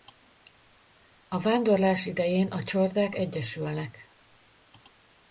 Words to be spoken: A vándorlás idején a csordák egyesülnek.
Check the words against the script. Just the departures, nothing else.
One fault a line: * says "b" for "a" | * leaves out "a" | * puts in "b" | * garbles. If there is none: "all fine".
all fine